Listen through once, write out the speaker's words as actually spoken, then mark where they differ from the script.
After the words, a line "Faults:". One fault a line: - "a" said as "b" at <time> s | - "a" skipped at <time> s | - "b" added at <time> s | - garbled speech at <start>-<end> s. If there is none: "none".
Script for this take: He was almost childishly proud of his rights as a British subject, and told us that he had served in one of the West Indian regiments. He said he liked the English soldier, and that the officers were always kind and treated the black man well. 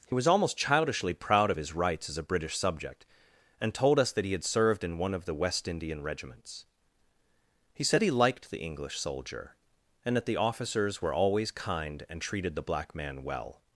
He was almost childishly proud of his rights as a British subject, and told us that he had served in one of the West Indian regiments. He said he liked the English soldier, and that the officers were always kind and treated the black man well.
Faults:
none